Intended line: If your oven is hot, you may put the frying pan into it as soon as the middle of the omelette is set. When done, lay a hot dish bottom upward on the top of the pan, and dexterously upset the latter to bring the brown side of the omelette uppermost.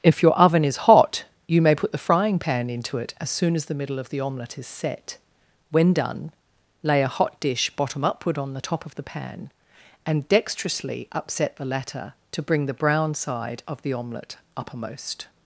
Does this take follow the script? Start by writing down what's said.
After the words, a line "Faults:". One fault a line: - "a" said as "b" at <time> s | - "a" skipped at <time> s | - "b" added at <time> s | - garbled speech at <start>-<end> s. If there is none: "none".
If your oven is hot, you may put the frying pan into it as soon as the middle of the omelette is set. When done, lay a hot dish bottom upward on the top of the pan, and dexterously upset the latter to bring the brown side of the omelette uppermost.
Faults:
none